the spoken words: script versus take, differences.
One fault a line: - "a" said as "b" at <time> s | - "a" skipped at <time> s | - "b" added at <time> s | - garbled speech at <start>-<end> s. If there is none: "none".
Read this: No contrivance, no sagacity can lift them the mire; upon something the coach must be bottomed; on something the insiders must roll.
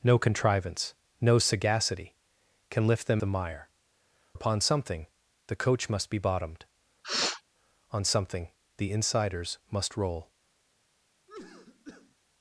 none